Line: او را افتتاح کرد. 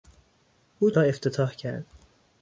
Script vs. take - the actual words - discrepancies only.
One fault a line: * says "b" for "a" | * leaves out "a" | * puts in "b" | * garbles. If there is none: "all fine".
all fine